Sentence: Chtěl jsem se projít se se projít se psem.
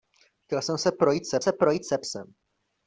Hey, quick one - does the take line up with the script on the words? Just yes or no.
yes